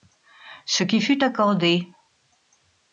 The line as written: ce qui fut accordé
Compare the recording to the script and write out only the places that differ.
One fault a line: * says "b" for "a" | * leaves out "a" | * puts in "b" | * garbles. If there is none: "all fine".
all fine